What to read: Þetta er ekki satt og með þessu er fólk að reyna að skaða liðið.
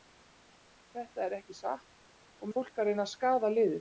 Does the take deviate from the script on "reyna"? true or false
false